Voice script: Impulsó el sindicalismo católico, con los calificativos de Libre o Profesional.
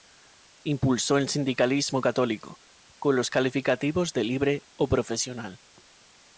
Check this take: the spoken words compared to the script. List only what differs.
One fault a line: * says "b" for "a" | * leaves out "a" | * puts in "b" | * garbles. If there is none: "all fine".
all fine